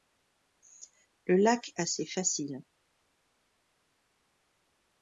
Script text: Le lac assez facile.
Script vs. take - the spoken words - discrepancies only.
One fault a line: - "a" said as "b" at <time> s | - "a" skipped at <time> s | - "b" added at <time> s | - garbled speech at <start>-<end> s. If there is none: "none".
none